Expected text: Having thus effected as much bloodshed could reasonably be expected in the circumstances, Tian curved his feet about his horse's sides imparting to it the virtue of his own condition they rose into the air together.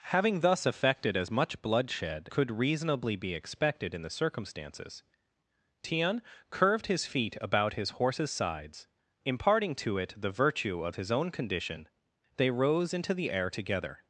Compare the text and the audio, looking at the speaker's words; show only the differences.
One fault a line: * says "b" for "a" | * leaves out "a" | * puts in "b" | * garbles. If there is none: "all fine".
all fine